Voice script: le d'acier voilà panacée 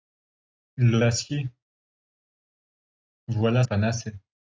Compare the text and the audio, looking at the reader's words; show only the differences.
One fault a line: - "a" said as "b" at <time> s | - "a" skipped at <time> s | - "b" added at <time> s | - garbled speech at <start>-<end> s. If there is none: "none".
none